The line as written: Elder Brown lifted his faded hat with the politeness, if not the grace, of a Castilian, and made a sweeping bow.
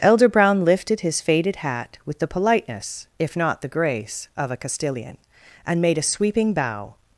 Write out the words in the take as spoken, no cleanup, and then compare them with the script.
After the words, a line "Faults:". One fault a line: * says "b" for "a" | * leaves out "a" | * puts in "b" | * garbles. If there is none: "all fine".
Elder Brown lifted his faded hat with the politeness, if not the grace, of a Castilian, and made a sweeping bow.
Faults:
all fine